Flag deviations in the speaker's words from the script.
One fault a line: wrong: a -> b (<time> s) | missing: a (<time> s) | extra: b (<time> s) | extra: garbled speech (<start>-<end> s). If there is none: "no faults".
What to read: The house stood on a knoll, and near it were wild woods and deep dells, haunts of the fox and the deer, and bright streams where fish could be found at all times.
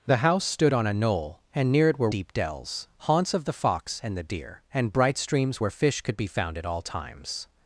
missing: wild woods and (2.1 s)